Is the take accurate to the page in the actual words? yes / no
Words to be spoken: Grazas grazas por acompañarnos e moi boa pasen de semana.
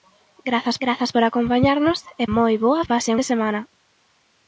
yes